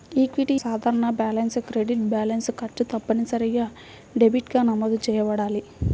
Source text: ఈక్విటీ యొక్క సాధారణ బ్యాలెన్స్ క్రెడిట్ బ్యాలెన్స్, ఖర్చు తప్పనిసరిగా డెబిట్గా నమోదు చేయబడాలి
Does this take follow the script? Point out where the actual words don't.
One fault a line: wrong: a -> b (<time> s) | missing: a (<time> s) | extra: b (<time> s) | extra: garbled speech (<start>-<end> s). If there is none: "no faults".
missing: యొక్క (0.6 s)